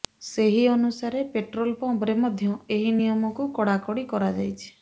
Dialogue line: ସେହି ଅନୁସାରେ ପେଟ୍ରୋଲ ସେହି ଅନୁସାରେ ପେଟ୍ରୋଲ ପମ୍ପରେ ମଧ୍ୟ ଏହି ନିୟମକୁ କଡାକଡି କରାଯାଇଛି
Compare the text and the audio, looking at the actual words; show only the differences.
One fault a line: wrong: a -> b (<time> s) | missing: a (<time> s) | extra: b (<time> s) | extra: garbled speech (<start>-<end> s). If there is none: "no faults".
missing: ସେହି ଅନୁସାରେ ପେଟ୍ରୋଲ (1.8 s)